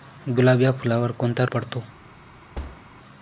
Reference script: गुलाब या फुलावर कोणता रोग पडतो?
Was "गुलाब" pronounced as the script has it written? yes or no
yes